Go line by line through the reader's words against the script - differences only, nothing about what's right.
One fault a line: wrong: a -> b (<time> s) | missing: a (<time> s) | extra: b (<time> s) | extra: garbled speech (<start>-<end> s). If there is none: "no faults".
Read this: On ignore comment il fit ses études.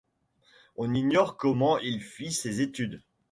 no faults